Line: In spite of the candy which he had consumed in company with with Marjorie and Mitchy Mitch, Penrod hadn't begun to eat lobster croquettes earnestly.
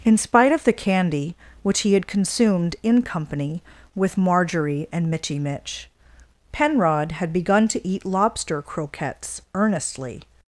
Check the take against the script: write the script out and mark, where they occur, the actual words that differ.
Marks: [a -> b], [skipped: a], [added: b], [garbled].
In spite of the candy which he had consumed in company with [skipped: with] Marjorie and Mitchy Mitch, Penrod [hadn't -> had] begun to eat lobster croquettes earnestly.